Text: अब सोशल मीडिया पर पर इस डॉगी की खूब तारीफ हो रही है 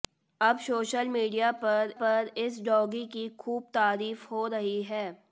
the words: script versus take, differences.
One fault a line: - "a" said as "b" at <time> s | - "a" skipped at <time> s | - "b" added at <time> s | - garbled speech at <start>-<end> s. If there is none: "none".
none